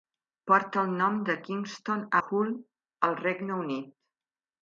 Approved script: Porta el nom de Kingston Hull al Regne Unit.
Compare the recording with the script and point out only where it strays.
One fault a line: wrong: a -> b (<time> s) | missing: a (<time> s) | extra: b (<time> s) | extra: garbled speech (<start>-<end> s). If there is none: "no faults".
no faults